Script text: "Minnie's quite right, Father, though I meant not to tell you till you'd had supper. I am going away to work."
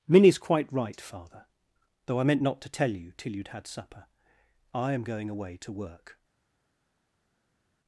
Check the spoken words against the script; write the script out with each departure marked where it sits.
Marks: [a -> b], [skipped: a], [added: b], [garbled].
"Minnie's quite right, Father, though I meant not to tell you till you'd had supper. I am going away to work."